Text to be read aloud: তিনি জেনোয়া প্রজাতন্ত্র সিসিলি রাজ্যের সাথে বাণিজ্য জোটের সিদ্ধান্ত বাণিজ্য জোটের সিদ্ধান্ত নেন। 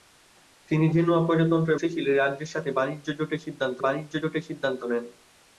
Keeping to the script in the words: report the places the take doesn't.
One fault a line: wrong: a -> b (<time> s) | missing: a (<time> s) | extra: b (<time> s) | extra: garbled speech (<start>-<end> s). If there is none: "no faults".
no faults